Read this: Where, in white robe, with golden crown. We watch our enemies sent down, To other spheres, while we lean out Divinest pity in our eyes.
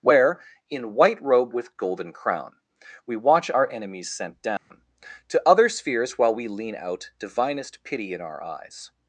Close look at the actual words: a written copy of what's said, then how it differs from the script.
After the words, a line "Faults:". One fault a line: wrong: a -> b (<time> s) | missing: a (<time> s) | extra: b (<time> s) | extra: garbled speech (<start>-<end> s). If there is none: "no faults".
Where, in white robe, with golden crown. We watch our enemies sent down, To other spheres, while we lean out Divinest pity in our eyes.
Faults:
no faults